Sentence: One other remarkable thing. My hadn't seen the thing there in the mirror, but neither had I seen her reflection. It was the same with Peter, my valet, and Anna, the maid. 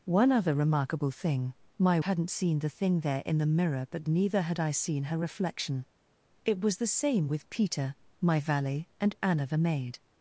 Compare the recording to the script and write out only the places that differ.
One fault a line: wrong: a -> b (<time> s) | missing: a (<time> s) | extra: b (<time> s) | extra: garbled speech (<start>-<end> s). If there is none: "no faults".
no faults